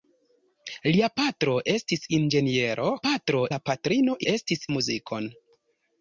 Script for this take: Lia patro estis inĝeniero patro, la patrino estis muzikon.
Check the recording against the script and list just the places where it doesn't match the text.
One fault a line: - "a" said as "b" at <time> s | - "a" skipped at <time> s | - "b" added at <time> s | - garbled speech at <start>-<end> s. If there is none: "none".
none